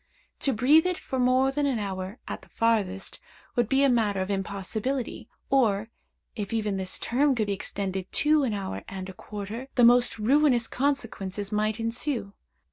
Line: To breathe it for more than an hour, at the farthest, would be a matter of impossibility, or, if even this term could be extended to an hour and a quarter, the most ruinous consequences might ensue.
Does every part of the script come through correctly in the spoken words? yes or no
yes